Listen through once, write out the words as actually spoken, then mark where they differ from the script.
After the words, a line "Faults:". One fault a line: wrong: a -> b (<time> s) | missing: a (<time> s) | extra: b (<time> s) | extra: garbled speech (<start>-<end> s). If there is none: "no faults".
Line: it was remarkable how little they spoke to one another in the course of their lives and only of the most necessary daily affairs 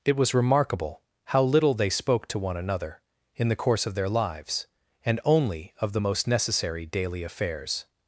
it was remarkable how little they spoke to one another in the course of their lives and only of the most necessary daily affairs
Faults:
no faults